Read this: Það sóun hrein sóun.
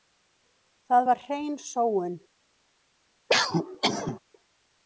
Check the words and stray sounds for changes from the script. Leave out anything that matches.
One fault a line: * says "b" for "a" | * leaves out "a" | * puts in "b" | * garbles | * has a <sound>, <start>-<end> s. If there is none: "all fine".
* says "var" for "sóun"
* has a cough, 3.3-4.2 s